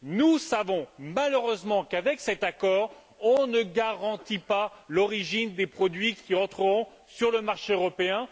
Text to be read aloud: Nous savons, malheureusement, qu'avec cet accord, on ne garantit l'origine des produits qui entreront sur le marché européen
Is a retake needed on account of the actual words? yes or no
yes